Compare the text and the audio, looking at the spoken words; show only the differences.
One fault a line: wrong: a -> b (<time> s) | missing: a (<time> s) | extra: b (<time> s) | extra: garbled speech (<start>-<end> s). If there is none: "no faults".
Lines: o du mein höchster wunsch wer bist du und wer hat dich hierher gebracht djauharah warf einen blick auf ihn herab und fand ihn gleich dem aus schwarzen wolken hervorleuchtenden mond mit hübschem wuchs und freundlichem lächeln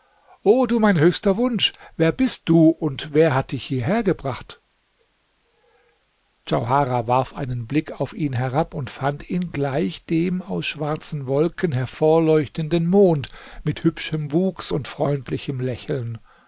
no faults